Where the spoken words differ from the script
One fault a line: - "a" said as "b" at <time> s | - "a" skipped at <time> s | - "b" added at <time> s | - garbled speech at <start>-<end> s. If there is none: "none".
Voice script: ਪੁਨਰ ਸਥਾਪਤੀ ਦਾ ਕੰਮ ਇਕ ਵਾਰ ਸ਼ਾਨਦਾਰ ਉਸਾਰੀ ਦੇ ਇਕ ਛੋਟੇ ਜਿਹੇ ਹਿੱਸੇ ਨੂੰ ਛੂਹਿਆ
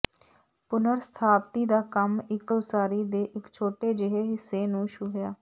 - "ਵਾਰ ਸ਼ਾਨਦਾਰ" skipped at 2.5 s